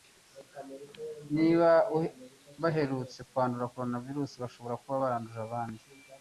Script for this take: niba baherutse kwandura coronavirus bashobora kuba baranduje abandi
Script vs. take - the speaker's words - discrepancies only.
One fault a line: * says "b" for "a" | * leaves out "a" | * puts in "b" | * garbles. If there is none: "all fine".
all fine